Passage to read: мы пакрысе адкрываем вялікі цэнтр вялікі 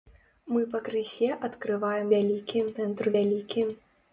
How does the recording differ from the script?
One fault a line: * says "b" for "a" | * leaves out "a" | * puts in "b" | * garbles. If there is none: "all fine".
all fine